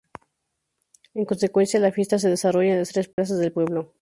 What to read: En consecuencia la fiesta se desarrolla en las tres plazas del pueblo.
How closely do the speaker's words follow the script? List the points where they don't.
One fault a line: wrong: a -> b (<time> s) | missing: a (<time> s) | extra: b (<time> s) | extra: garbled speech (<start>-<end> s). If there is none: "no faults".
no faults